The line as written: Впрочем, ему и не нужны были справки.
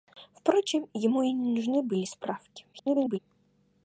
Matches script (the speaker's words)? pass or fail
fail